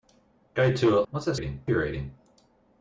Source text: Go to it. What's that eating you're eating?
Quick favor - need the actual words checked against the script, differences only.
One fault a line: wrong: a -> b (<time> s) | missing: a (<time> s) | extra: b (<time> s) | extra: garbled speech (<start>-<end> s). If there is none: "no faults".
no faults